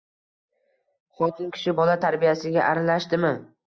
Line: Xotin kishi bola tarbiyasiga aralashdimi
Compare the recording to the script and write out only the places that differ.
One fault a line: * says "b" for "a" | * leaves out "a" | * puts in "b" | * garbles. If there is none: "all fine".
all fine